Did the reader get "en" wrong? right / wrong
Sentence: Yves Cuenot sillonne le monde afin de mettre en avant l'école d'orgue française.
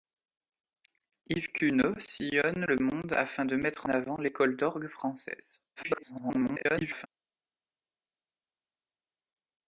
wrong